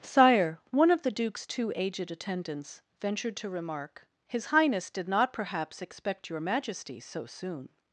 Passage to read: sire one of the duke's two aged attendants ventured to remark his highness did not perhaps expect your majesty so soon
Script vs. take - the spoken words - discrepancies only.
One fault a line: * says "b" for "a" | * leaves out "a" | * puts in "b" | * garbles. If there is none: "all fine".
all fine